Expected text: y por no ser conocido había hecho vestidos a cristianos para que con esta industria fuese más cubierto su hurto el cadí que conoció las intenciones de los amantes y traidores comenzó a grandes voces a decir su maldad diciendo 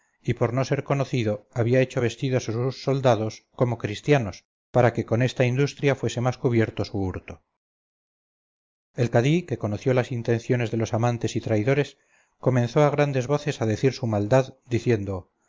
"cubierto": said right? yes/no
yes